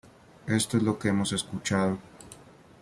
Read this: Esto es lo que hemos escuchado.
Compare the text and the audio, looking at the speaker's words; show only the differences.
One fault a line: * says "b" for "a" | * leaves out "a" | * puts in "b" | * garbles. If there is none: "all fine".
all fine